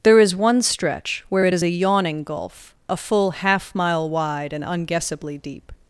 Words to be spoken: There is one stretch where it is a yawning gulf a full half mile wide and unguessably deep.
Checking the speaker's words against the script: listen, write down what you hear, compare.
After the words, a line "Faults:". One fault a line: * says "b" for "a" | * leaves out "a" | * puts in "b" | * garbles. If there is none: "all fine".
There is one stretch where it is a yawning gulf a full half mile wide and unguessably deep.
Faults:
all fine